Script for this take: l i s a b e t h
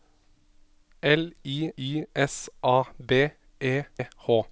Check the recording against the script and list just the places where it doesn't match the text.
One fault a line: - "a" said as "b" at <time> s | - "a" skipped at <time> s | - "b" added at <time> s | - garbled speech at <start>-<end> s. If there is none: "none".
- "i" added at 1.8 s
- "t" skipped at 3.8 s